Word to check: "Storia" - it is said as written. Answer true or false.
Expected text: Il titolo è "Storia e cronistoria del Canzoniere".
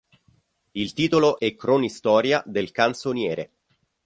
false